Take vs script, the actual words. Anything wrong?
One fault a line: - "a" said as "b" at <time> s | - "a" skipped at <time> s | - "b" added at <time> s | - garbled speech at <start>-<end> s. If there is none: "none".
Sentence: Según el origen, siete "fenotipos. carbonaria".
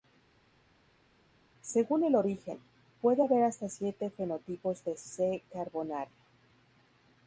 - "puede haber hasta" added at 3.0 s
- "de C" added at 4.8 s